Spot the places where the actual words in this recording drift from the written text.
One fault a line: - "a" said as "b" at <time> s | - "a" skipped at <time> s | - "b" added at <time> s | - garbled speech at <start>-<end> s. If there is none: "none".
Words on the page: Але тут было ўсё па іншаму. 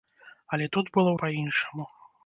- "ўсё" skipped at 1.1 s